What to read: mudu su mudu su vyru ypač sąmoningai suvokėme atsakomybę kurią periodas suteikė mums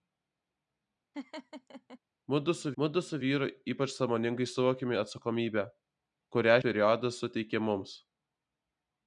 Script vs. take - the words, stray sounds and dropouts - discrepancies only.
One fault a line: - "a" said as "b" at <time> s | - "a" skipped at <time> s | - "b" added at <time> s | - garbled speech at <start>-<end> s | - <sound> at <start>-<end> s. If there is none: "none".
- laugh at 1.1-2.0 s